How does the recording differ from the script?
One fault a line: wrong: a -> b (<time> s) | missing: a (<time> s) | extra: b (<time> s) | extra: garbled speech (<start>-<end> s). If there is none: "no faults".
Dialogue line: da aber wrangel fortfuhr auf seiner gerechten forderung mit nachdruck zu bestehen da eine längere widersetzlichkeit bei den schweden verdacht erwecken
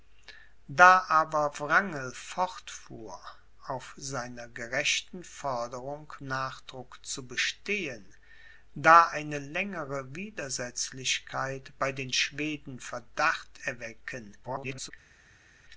missing: mit (6.1 s)
extra: garbled speech (14.4-14.9 s)